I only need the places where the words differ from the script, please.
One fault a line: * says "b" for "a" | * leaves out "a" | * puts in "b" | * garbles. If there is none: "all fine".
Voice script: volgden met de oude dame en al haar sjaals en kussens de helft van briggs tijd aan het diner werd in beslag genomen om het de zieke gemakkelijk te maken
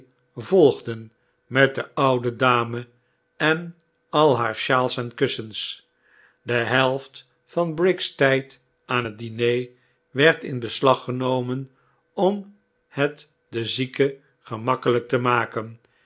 all fine